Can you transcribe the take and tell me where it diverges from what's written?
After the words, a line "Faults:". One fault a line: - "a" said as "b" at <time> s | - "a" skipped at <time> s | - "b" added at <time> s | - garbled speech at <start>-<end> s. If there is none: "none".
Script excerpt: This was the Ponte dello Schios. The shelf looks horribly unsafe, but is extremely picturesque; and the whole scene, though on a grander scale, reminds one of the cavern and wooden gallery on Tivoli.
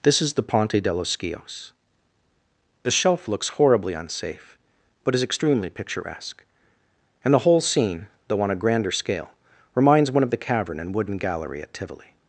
This is the Ponte dello Schios. The shelf looks horribly unsafe, but is extremely picturesque; and the whole scene, though on a grander scale, reminds one of the cavern and wooden gallery at Tivoli.
Faults:
- "was" said as "is" at 0.2 s
- "on" said as "at" at 11.6 s